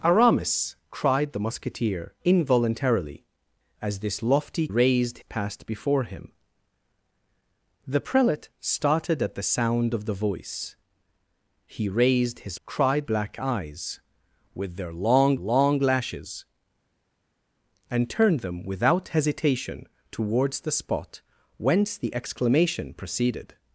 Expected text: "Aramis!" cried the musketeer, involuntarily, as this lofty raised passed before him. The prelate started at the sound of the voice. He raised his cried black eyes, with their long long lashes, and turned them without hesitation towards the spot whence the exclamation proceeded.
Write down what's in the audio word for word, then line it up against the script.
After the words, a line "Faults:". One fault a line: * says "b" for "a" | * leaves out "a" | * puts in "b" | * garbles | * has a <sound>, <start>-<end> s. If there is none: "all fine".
"Aramis!" cried the musketeer, involuntarily, as this lofty raised passed before him. The prelate started at the sound of the voice. He raised his cried black eyes, with their long long lashes, and turned them without hesitation towards the spot whence the exclamation proceeded.
Faults:
all fine